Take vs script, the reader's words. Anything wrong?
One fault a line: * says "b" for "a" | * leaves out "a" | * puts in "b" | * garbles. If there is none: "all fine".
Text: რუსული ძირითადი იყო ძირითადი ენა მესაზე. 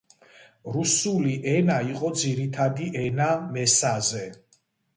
* says "ენა" for "ძირითადი"